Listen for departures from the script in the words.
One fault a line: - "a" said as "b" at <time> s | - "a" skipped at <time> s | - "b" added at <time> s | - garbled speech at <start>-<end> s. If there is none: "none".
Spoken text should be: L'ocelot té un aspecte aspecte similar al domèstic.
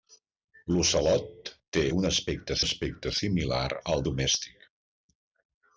none